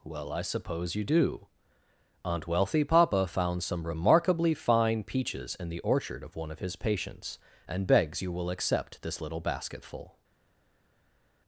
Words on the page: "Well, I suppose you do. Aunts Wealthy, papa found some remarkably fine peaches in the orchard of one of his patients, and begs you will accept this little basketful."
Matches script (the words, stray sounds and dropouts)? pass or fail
fail